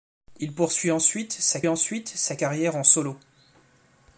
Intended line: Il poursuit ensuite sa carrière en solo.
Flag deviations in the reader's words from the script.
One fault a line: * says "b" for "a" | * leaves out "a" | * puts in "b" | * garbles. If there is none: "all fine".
* puts in "ensuite sa"